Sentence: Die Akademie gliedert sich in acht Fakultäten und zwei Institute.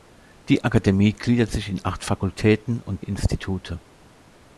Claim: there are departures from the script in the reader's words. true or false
true